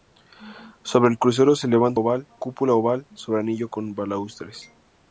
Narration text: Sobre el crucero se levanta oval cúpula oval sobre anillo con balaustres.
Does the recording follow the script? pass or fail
pass